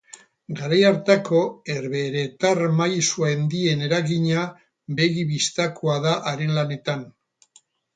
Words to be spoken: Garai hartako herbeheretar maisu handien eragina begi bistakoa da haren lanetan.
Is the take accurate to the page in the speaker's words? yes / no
yes